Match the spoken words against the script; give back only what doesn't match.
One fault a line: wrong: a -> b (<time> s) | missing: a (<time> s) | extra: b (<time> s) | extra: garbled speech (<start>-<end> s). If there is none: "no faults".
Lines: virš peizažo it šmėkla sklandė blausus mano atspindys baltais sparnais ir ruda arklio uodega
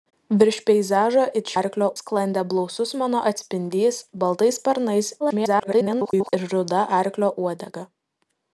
wrong: šmėkla -> arklio (1.6 s)
extra: garbled speech (5.2-6.3 s)